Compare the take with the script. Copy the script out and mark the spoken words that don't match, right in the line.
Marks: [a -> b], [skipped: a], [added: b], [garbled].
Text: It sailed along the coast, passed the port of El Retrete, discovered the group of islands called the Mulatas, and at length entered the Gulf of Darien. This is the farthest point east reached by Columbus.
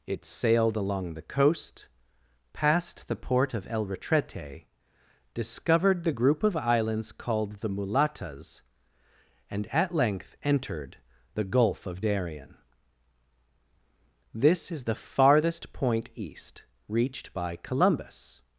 It sailed along the coast, passed the port of El Retrete, discovered the group of islands called the Mulatas, and at length entered the Gulf of Darien. This is the farthest point east reached by Columbus.